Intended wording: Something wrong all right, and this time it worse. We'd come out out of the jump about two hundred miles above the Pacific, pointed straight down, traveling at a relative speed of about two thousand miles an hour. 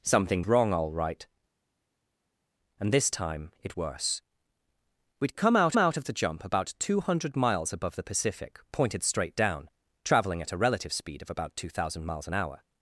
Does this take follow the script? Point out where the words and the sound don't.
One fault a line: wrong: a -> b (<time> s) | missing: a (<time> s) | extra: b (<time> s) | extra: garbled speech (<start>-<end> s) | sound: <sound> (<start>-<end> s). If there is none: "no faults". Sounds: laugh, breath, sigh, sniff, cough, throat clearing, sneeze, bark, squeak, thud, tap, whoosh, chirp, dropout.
no faults